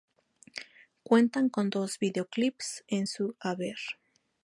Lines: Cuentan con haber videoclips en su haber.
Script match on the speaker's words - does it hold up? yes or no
no